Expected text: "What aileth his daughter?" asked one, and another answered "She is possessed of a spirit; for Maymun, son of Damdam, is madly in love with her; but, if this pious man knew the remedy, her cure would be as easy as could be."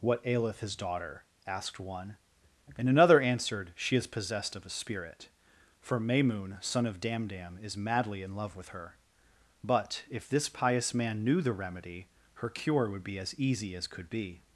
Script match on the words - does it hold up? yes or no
yes